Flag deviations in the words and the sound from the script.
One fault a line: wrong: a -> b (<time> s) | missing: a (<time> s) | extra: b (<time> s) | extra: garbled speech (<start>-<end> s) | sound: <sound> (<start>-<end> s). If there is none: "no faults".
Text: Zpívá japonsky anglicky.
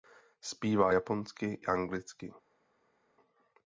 no faults